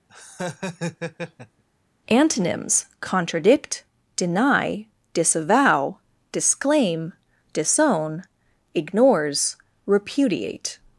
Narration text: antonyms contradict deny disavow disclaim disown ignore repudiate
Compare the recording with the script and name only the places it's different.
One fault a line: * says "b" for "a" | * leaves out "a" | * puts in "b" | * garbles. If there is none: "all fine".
* says "ignores" for "ignore"